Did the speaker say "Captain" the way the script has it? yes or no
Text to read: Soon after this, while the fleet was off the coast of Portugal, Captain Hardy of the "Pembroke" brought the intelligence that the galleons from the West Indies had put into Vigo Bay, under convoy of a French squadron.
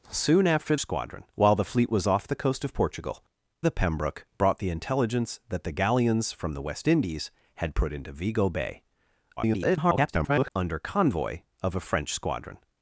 no